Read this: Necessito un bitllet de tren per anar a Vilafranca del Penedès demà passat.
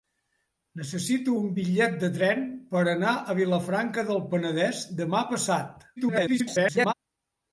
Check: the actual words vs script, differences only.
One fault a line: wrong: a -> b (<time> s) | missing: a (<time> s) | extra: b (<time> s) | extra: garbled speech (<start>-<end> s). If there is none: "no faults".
extra: garbled speech (6.0-6.9 s)